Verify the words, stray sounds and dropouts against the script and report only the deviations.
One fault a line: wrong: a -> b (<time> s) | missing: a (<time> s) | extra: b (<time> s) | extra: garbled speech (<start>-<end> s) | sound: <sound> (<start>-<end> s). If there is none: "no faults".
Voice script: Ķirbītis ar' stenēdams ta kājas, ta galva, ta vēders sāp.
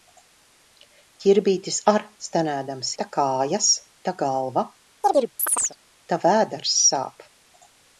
sound: chirp (5.0-5.8 s)